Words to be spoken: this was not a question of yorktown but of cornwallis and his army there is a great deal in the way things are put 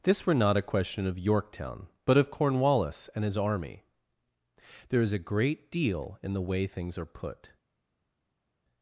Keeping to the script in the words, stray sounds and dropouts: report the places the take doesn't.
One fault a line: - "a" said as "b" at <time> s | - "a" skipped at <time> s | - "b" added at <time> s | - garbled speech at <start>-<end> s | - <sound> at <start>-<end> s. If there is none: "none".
- "was" said as "were" at 0.2 s